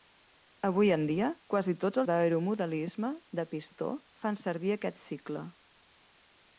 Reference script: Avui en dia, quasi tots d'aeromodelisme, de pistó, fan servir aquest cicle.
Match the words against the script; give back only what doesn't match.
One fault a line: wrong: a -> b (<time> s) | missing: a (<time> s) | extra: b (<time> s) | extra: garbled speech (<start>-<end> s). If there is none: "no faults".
no faults